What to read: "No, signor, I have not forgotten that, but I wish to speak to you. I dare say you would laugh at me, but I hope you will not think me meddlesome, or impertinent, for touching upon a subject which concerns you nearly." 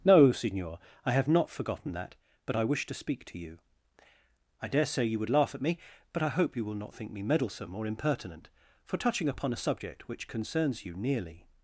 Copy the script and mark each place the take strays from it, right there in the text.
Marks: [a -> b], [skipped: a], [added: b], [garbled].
"No, signor, I have not forgotten that, but I wish to speak to you. I dare say you would laugh at me, but I hope you will not think me meddlesome, or impertinent, for touching upon a subject which concerns you nearly."